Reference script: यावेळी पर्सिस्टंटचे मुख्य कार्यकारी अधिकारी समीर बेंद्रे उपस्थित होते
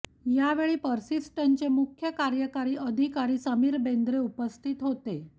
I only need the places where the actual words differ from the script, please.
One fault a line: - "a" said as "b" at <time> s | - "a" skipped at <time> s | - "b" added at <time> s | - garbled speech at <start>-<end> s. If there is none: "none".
none